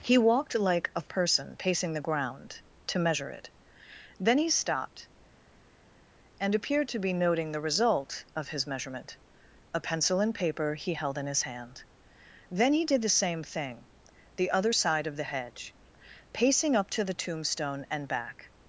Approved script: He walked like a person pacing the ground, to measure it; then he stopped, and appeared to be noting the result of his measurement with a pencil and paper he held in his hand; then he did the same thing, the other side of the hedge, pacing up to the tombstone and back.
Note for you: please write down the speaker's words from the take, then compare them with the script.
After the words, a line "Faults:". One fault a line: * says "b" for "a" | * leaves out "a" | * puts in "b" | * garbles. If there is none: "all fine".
He walked like a person pacing the ground, to measure it; then he stopped, and appeared to be noting the result of his measurement a pencil and paper he held in his hand; then he did the same thing, the other side of the hedge, pacing up to the tombstone and back.
Faults:
* leaves out "with"